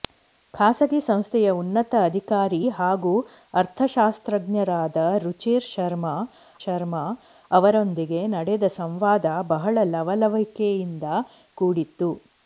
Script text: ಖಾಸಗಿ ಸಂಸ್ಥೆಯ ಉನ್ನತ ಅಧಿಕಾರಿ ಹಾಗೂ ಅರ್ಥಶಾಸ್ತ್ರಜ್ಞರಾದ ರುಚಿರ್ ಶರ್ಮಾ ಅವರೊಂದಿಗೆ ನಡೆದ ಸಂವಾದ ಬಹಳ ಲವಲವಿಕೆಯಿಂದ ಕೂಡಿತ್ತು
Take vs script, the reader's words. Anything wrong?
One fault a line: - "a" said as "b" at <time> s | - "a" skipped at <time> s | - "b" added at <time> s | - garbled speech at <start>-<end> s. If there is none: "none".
- "ಶರ್ಮಾ" added at 6.6 s